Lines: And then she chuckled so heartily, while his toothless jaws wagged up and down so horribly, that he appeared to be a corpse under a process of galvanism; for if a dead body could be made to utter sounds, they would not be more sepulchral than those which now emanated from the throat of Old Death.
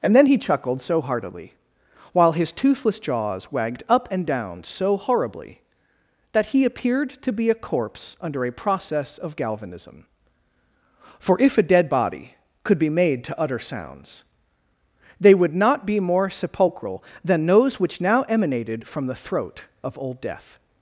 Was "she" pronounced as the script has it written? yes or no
no